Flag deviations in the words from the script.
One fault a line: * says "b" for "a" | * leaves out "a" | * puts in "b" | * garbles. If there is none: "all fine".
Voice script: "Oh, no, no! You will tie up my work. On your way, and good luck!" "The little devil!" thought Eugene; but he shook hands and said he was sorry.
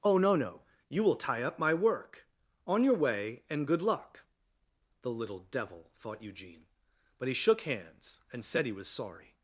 all fine